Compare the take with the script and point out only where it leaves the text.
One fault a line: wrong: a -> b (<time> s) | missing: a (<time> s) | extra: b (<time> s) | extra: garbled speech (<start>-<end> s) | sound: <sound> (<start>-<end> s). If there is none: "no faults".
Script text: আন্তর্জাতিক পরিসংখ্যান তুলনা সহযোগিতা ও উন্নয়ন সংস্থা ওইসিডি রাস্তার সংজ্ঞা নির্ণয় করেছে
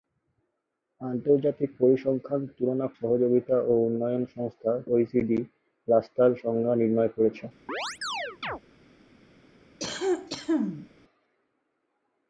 sound: chirp (7.7-8.6 s)
sound: cough (9.8-10.9 s)